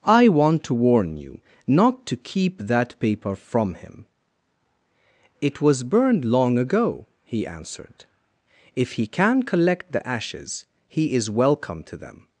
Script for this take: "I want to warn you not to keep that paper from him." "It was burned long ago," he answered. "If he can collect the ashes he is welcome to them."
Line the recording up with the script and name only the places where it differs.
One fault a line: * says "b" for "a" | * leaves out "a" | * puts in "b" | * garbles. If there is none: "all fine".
all fine